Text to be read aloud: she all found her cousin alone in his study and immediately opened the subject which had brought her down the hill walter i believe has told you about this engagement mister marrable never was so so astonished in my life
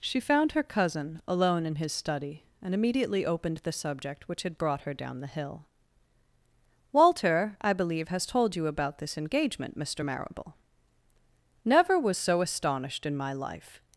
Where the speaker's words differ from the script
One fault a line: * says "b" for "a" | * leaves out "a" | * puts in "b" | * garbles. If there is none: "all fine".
* leaves out "all"
* leaves out "so"